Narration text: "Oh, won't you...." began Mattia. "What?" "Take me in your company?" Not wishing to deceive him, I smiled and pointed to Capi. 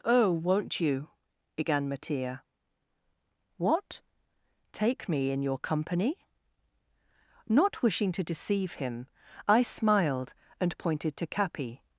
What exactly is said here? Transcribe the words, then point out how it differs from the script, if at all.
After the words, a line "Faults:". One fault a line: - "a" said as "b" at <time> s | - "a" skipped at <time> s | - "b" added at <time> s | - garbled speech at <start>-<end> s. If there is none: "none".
"Oh, won't you...." began Mattia. "What?" "Take me in your company?" Not wishing to deceive him, I smiled and pointed to Capi.
Faults:
none